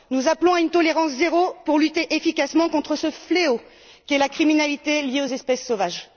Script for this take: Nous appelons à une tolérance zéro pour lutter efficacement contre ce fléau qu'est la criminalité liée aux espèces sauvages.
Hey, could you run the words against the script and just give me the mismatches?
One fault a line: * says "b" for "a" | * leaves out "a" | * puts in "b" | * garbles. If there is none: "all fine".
all fine